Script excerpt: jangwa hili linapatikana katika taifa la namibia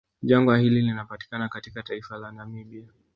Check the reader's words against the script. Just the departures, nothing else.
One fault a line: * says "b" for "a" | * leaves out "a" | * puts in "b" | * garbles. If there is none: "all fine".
all fine